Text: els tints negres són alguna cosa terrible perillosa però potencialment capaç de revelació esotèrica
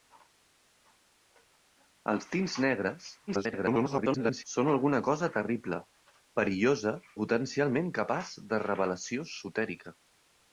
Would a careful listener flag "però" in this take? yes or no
yes